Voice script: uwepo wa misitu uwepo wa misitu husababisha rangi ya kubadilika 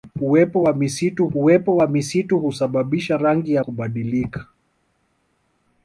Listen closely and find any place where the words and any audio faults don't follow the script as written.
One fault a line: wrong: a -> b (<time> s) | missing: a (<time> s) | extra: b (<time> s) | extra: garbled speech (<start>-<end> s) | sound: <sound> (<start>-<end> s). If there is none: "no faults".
no faults